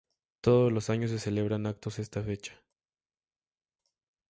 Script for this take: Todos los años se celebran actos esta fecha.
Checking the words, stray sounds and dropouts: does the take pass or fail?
pass